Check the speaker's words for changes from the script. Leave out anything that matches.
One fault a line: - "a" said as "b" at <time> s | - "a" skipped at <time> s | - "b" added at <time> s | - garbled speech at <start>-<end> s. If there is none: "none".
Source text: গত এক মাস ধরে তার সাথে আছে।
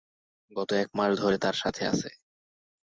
none